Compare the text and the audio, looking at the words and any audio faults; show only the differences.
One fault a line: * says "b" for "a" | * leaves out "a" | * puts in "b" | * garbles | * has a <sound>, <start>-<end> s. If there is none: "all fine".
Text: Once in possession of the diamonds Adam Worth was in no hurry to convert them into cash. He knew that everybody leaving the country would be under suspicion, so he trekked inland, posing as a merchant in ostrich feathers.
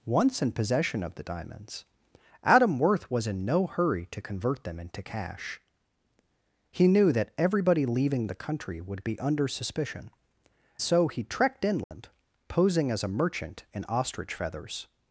* has a dropout, 11.8-11.9 s